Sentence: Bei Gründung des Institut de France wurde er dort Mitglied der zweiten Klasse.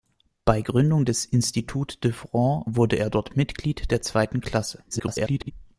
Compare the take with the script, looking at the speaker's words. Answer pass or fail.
fail